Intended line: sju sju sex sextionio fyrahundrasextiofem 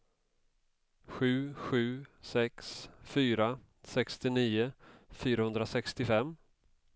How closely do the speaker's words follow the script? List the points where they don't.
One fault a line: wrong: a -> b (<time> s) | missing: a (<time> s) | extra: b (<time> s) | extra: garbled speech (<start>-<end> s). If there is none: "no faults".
extra: fyra (3.0 s)